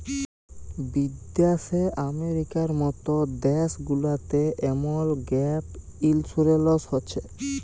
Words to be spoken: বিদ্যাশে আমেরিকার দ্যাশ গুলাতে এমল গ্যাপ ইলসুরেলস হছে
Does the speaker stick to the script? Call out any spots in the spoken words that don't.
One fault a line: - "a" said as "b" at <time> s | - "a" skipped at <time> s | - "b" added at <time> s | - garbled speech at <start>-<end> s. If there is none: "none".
- "মত" added at 2.8 s